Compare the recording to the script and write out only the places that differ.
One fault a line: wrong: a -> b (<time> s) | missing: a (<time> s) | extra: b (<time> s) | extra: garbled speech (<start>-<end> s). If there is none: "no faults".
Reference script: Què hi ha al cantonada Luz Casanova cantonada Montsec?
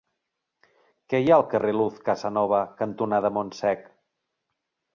wrong: cantonada -> carrer (1.6 s)